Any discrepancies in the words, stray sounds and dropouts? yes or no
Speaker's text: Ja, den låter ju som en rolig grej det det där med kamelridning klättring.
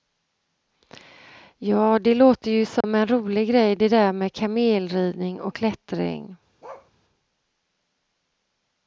yes